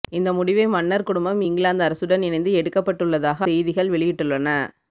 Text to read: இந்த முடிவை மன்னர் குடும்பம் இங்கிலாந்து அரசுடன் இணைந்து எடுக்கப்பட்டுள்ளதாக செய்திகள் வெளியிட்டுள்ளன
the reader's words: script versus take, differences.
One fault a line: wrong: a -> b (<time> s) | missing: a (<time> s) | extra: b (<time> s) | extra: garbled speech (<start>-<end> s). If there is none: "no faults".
no faults